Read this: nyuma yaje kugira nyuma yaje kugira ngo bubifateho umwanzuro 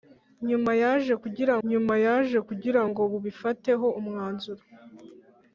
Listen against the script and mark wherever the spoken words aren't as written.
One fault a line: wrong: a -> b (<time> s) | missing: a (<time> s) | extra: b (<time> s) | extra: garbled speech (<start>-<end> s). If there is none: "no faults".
no faults